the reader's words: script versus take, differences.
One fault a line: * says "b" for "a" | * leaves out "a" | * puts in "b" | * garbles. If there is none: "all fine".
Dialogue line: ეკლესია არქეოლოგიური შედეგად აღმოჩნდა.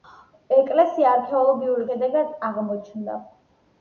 all fine